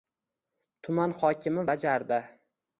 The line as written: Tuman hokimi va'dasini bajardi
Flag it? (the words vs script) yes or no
yes